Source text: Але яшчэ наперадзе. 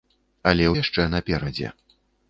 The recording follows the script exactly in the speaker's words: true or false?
true